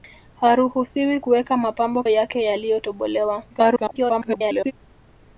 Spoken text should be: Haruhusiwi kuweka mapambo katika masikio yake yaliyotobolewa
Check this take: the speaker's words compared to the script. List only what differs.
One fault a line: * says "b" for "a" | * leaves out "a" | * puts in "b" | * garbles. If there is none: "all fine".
* leaves out "katika masikio"
* garbles